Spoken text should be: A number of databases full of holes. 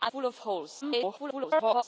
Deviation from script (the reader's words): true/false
true